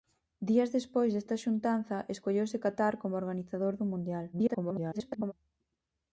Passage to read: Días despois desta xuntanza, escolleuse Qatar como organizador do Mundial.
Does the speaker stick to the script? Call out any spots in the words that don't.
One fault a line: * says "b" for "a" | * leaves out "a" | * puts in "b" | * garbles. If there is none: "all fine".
* garbles